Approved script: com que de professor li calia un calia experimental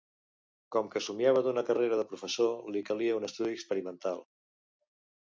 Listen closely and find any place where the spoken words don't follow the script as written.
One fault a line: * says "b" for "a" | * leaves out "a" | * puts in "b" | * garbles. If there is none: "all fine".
* puts in "somiava d'una carrera"
* says "estudi" for "calia"